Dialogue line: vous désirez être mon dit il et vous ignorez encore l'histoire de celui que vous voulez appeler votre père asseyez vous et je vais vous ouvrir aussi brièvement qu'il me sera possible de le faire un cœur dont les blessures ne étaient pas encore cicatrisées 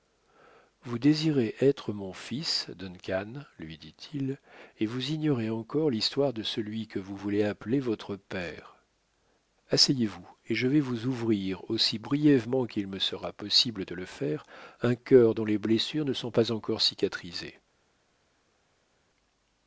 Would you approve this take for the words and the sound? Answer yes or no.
no